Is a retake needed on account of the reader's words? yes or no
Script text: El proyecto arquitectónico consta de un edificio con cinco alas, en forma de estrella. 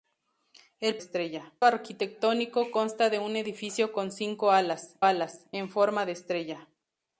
yes